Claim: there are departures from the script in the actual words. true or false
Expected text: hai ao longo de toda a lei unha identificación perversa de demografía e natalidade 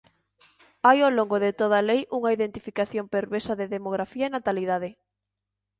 false